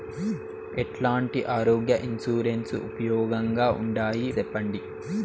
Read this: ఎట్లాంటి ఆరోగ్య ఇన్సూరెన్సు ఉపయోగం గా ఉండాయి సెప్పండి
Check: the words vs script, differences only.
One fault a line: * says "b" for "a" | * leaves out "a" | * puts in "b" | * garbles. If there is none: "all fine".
all fine